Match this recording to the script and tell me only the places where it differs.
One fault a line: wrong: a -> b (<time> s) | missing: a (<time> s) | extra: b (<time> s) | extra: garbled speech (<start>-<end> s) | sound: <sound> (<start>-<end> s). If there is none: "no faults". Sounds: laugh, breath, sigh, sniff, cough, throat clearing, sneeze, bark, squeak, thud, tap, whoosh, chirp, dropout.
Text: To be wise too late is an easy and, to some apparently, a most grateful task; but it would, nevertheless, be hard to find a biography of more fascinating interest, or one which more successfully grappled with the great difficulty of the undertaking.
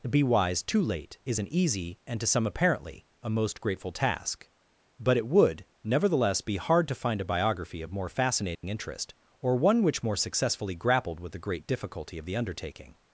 missing: To (0.1 s)
sound: dropout (8.6-8.6 s)